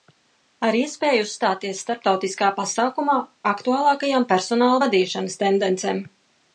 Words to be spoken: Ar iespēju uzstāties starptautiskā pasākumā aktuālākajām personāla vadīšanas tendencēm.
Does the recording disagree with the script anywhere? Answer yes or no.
no